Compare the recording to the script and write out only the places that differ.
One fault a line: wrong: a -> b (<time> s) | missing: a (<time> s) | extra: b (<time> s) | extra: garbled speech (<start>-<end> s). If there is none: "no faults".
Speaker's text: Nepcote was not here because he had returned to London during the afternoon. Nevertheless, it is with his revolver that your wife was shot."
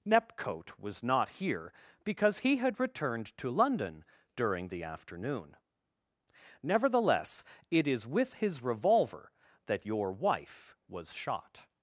no faults